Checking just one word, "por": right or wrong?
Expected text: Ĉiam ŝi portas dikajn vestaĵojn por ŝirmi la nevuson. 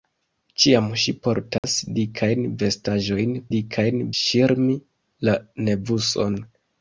wrong